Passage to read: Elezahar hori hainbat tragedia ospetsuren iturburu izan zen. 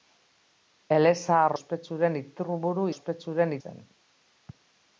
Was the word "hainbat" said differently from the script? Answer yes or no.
yes